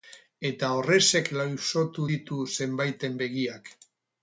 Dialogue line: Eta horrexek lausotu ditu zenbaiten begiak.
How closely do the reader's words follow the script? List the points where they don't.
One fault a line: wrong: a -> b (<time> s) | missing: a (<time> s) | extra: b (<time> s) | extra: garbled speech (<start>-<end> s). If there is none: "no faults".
no faults